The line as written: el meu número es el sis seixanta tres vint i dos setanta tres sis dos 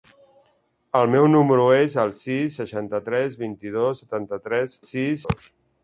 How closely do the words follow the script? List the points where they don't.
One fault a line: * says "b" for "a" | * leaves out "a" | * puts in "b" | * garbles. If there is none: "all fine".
all fine